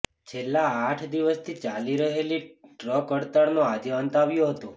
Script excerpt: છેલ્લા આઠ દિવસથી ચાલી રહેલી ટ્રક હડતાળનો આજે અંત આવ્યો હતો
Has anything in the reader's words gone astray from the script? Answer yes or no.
no